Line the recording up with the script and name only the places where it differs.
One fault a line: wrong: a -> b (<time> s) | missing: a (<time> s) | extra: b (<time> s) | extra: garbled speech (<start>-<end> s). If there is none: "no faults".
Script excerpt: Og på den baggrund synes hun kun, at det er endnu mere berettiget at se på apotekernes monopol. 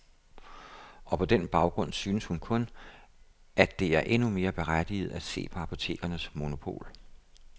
no faults